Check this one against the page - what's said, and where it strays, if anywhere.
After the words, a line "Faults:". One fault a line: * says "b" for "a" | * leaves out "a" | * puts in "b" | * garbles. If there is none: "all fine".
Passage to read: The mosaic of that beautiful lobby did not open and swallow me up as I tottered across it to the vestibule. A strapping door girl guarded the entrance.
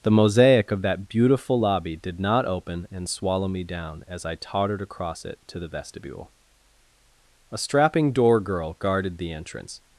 The mosaic of that beautiful lobby did not open and swallow me down as I tottered across it to the vestibule. A strapping door girl guarded the entrance.
Faults:
* says "down" for "up"